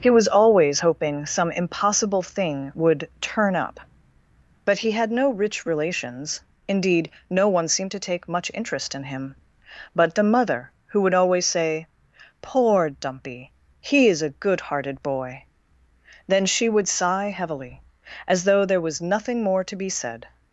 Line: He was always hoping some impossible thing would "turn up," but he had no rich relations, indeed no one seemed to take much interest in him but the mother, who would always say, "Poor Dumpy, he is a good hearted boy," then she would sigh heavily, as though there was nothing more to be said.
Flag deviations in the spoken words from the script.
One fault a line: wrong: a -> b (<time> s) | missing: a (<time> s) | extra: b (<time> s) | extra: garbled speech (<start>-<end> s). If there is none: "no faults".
no faults